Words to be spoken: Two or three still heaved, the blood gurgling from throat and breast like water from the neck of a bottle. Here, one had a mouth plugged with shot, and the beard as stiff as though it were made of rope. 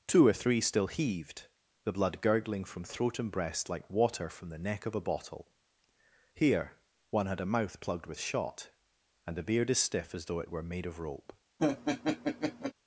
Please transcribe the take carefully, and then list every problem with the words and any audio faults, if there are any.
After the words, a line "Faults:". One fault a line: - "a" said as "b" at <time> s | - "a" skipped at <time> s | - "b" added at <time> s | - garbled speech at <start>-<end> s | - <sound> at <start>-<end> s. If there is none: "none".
Two or three still heaved, the blood gurgling from throat and breast like water from the neck of a bottle. Here, one had a mouth plugged with shot, and the beard as stiff as though it were made of rope.
Faults:
- laugh at 11.6-12.7 s